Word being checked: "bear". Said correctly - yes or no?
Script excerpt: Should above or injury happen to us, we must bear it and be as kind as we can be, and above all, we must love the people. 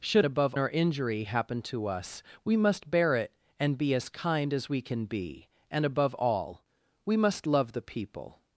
yes